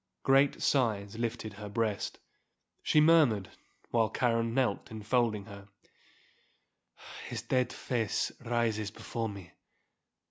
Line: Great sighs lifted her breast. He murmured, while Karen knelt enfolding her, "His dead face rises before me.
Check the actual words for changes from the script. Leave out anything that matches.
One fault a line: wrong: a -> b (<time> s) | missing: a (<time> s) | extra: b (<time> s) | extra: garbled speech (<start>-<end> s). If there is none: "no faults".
wrong: He -> She (2.8 s)